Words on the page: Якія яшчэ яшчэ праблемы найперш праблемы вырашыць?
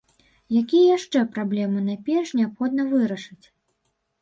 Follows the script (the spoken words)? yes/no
no